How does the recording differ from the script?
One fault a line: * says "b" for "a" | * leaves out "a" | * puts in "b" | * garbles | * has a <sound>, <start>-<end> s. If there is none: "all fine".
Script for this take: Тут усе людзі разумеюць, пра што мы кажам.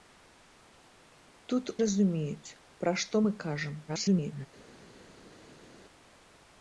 * leaves out "усе людзі"
* garbles